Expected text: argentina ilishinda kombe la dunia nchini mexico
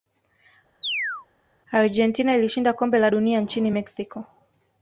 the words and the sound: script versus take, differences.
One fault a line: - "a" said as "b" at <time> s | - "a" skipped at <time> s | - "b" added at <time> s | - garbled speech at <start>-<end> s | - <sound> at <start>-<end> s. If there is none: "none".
- chirp at 0.8-1.3 s